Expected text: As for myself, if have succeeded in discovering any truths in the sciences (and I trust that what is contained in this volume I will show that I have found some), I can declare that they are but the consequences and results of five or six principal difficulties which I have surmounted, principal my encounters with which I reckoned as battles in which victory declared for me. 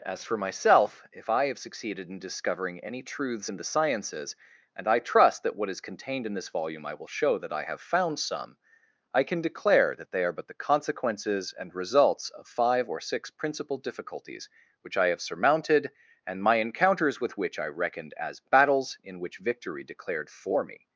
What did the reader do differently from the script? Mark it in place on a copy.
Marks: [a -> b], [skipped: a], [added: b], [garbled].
As for myself, if [added: I] have succeeded in discovering any truths in the sciences (and I trust that what is contained in this volume I will show that I have found some), I can declare that they are but the consequences and results of five or six principal difficulties which I have surmounted, [principal -> and] my encounters with which I reckoned as battles in which victory declared for me.